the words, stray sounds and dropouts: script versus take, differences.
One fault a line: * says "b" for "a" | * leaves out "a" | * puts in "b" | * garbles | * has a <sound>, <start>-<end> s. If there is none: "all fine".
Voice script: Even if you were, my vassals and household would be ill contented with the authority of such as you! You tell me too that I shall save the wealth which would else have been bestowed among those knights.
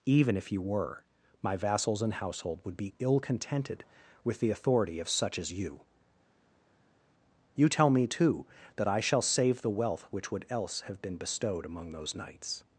all fine